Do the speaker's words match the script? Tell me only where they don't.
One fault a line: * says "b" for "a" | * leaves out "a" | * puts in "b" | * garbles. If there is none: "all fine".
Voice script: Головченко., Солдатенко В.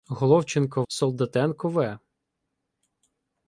all fine